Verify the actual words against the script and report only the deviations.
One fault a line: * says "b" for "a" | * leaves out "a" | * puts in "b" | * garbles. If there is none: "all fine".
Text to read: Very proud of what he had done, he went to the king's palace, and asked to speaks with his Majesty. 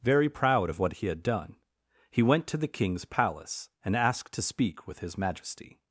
* says "speak" for "speaks"